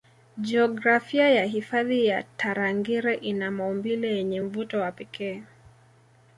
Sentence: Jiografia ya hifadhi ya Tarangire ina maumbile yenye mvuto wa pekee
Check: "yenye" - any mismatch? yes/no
no